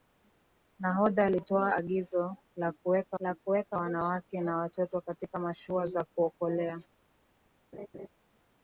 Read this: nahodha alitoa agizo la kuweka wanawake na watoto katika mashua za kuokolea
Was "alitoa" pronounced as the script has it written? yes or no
yes